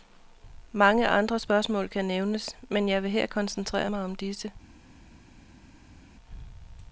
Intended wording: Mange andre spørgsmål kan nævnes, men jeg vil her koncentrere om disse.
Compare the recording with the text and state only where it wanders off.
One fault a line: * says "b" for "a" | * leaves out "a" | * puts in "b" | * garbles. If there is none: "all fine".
* puts in "mig"